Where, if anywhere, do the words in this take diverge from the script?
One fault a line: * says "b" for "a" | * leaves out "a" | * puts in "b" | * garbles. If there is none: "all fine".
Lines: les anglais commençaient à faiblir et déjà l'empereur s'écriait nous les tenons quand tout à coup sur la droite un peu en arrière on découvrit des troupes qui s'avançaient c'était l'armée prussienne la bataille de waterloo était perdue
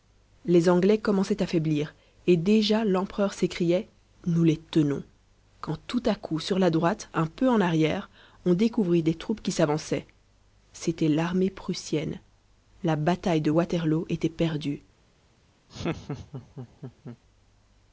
all fine